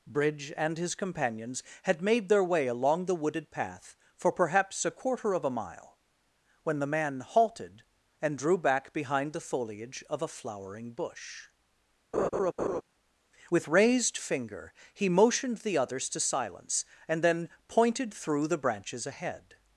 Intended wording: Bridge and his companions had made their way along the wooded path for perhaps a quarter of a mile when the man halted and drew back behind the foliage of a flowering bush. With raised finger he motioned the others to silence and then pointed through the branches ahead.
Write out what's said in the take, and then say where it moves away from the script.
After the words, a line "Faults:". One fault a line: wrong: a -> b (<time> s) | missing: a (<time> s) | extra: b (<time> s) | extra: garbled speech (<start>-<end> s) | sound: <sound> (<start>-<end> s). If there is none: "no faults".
Bridge and his companions had made their way along the wooded path for perhaps a quarter of a mile when the man halted and drew back behind the foliage of a flowering bush. With raised finger he motioned the others to silence and then pointed through the branches ahead.
Faults:
sound: laugh (12.1-12.8 s)